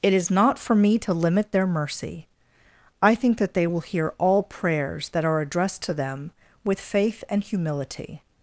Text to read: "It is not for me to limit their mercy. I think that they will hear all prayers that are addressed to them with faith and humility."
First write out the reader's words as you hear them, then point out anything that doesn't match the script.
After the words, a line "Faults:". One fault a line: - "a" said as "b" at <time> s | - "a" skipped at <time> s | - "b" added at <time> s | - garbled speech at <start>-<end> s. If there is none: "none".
"It is not for me to limit their mercy. I think that they will hear all prayers that are addressed to them with faith and humility."
Faults:
none